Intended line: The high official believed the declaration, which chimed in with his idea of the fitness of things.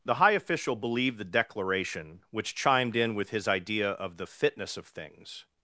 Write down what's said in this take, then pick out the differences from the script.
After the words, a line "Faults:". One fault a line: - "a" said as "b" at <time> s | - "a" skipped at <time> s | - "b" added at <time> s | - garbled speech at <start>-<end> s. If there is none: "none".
The high official believed the declaration, which chimed in with his idea of the fitness of things.
Faults:
none